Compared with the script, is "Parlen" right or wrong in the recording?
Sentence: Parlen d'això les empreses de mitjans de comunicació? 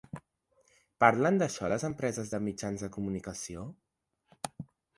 right